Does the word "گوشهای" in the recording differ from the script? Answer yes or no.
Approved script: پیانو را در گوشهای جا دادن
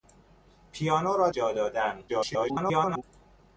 yes